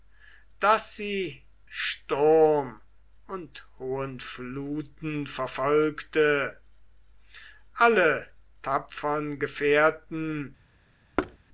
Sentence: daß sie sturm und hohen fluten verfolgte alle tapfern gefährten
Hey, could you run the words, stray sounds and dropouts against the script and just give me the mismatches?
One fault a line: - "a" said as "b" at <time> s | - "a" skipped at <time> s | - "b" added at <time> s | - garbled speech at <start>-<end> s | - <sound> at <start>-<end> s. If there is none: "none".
- thud at 11.2-11.4 s